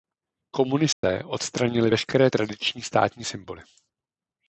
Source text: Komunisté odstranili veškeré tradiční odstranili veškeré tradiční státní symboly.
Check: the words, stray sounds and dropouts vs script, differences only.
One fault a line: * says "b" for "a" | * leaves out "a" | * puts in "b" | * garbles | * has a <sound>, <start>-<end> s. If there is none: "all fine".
* has a dropout, 0.9-1.0 s
* leaves out "odstranili veškeré tradiční"